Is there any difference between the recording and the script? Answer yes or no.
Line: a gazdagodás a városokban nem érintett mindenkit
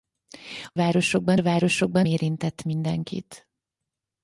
yes